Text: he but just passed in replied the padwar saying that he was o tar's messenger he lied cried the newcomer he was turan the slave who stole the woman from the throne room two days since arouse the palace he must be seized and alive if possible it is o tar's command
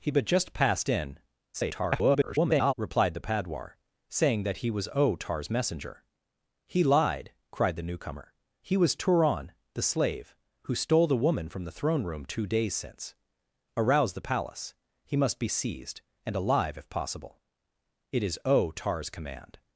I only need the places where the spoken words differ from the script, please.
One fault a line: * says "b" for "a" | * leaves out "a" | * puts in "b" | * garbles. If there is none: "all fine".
* garbles